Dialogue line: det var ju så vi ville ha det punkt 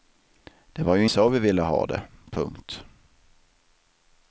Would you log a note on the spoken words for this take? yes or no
no